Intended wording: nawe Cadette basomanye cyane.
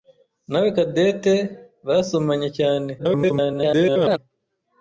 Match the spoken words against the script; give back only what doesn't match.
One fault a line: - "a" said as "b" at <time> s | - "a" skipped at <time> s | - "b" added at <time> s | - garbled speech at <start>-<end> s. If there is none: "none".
- garbled speech at 3.0-4.2 s